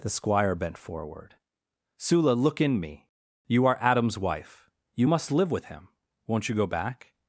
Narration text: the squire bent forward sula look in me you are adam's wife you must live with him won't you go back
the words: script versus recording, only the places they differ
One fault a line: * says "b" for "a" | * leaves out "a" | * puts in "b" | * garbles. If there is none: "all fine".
all fine